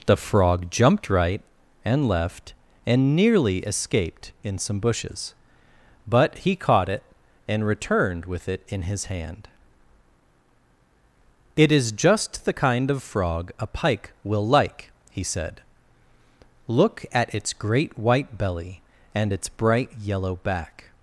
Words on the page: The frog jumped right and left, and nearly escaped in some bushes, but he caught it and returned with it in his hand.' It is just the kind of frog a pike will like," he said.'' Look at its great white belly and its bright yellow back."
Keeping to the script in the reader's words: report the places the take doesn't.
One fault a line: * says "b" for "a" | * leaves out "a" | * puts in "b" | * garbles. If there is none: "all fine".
all fine